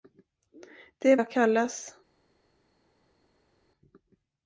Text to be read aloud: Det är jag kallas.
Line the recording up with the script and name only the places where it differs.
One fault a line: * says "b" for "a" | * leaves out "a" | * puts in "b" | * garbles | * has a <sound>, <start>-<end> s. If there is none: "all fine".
all fine